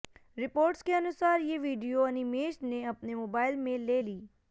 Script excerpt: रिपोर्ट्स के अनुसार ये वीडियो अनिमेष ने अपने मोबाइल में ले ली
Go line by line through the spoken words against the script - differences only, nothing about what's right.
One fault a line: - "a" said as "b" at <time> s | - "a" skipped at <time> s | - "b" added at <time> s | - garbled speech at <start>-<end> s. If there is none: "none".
none